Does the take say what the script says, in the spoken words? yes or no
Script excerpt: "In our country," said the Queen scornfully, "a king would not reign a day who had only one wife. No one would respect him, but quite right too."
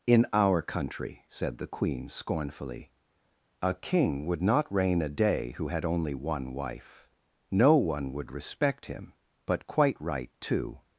yes